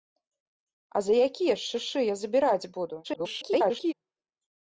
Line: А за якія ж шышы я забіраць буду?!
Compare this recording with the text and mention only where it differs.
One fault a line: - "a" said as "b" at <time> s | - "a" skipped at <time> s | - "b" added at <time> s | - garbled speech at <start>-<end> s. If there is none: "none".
- garbled speech at 3.0-3.9 s